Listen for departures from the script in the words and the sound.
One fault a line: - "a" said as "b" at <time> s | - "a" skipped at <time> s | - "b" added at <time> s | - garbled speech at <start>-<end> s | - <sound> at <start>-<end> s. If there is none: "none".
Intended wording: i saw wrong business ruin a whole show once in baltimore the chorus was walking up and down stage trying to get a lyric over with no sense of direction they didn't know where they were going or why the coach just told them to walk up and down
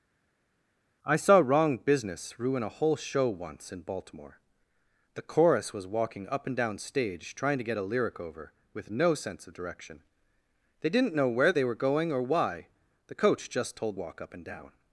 - "them to" skipped at 14.0 s